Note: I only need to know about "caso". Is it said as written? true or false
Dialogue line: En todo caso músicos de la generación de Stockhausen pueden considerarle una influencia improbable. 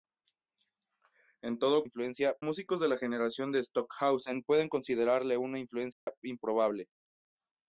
false